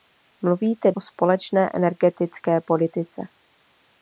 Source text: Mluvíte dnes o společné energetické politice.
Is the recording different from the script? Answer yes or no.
yes